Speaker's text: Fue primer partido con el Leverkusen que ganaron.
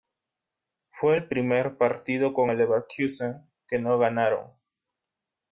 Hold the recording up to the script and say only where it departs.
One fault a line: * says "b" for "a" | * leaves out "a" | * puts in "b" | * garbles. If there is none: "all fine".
* puts in "el"
* puts in "no"